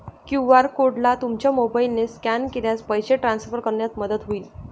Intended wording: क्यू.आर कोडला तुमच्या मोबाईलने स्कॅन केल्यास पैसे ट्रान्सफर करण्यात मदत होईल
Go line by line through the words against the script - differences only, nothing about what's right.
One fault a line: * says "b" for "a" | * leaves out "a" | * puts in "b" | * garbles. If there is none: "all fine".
all fine